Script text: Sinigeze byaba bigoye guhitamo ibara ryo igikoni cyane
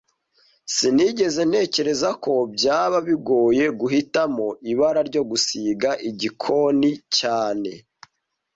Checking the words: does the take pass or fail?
fail